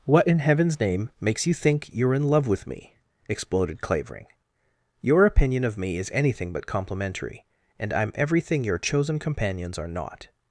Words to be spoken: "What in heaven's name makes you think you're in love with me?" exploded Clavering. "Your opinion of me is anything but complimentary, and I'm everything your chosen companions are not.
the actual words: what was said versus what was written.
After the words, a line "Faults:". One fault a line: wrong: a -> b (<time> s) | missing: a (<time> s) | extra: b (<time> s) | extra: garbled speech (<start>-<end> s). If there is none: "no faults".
"What in heaven's name makes you think you're in love with me?" exploded Clavering. "Your opinion of me is anything but complimentary, and I'm everything your chosen companions are not.
Faults:
no faults